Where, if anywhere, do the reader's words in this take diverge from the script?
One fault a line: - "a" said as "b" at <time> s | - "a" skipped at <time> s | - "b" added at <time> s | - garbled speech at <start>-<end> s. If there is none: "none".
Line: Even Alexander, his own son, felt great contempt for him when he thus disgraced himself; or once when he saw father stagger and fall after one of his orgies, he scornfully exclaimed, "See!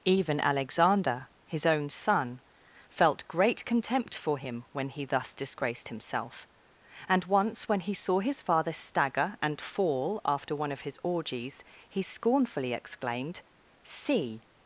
- "or" said as "and" at 7.1 s
- "his" added at 8.2 s